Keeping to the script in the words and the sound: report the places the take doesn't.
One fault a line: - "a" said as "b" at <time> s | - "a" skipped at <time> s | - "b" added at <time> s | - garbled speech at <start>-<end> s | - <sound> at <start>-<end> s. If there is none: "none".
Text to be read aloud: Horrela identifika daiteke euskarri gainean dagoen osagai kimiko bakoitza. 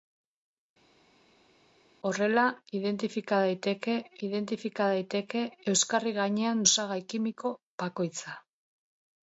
- "identifika daiteke" added at 4.3 s
- "dagoen" skipped at 6.6 s